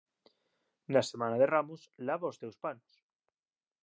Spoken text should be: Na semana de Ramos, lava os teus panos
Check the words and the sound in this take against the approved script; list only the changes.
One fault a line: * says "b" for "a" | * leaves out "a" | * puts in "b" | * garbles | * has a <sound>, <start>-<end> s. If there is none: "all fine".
all fine